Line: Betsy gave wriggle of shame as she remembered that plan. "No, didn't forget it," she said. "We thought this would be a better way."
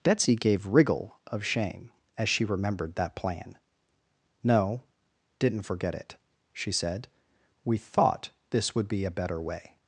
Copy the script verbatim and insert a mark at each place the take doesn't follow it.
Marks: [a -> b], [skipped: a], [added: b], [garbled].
Betsy gave wriggle of shame as she remembered that plan. "No, didn't forget it," she said. "We thought this would be a better way."